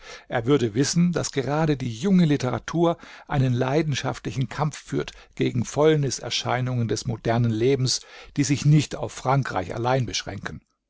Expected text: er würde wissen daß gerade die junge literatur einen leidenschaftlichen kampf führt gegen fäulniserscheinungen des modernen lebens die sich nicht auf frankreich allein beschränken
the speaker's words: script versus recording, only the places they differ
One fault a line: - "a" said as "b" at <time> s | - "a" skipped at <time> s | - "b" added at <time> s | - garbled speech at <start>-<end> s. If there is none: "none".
none